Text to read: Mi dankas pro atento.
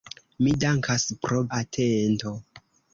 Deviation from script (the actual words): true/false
false